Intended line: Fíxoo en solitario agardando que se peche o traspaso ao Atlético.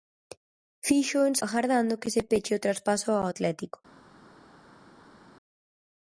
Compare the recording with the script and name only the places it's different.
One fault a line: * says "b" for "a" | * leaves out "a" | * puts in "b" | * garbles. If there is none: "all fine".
* leaves out "solitario"